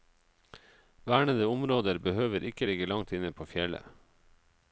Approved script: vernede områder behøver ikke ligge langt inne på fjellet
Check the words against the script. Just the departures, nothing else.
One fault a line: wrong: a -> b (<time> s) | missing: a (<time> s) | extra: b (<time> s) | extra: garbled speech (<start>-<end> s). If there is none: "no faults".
no faults